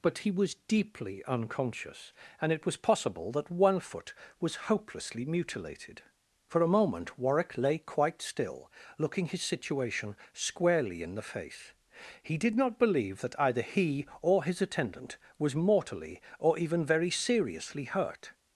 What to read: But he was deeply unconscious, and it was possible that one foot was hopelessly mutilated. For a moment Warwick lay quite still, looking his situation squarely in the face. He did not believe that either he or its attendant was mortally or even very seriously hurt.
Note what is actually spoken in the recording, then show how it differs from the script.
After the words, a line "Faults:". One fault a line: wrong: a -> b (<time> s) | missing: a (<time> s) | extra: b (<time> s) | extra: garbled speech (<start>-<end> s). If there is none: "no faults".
But he was deeply unconscious, and it was possible that one foot was hopelessly mutilated. For a moment Warwick lay quite still, looking his situation squarely in the face. He did not believe that either he or his attendant was mortally or even very seriously hurt.
Faults:
wrong: its -> his (14.4 s)